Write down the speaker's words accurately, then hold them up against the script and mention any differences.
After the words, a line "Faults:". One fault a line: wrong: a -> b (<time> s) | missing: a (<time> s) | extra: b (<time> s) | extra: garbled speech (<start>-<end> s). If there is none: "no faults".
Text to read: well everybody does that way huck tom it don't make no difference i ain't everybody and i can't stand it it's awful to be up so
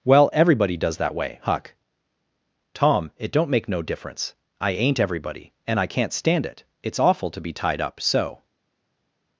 well everybody does that way huck tom it don't make no difference i ain't everybody and i can't stand it it's awful to be tied up so
Faults:
extra: tied (7.5 s)